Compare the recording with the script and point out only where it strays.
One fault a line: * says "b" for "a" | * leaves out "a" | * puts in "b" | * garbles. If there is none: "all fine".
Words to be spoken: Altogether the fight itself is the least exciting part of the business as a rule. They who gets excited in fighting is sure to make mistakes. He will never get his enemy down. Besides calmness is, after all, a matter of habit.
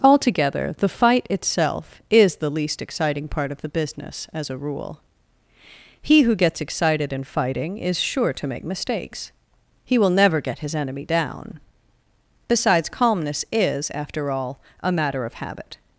* says "He" for "They"